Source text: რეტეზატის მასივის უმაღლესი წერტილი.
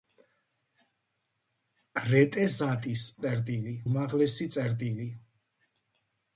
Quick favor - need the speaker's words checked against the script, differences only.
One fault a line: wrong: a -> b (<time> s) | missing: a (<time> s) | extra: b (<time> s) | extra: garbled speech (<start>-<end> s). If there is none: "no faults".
wrong: მასივის -> წერტილი (3.2 s)